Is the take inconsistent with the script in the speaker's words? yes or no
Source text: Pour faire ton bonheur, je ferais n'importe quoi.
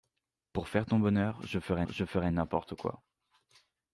yes